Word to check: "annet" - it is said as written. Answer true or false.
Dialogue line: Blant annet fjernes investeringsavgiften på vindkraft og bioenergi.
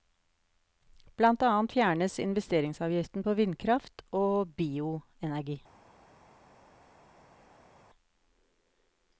true